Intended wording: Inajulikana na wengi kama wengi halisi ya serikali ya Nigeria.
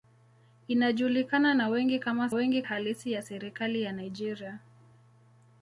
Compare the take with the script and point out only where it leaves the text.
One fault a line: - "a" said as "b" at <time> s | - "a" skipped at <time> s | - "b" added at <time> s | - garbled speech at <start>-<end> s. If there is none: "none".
none